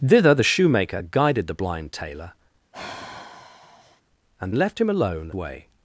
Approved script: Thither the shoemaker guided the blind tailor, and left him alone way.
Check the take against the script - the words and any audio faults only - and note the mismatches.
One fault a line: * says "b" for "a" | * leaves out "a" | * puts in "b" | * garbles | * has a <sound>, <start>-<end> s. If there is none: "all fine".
* has a sigh, 2.7-4.0 s